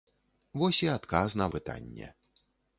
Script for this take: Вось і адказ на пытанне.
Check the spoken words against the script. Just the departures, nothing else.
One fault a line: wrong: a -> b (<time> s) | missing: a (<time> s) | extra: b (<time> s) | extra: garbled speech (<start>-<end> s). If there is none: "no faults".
no faults